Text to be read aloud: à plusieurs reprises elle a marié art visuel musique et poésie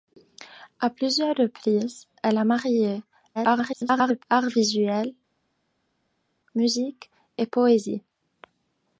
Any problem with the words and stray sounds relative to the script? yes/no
yes